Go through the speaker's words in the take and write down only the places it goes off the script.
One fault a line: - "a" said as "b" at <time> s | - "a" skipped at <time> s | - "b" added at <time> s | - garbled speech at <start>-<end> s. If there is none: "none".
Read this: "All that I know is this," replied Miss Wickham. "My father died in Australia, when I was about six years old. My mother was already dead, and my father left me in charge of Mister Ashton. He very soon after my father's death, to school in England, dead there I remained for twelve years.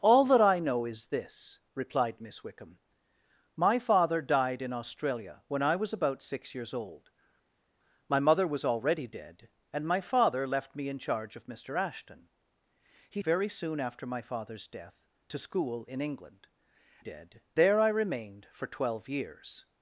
none